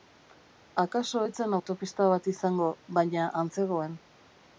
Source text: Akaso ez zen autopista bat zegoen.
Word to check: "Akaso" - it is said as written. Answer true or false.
true